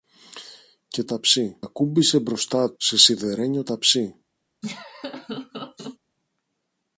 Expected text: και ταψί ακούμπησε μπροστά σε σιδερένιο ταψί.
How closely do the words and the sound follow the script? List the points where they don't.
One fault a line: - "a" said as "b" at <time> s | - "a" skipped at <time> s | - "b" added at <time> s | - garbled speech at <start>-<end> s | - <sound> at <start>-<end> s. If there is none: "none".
- laugh at 4.6-6.0 s